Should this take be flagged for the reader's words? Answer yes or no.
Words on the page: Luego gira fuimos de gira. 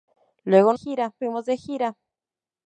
no